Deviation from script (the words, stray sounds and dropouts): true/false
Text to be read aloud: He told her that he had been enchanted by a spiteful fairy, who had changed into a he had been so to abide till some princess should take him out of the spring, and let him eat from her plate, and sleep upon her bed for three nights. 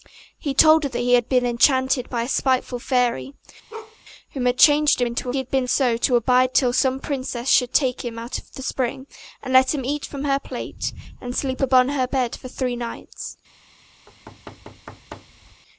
true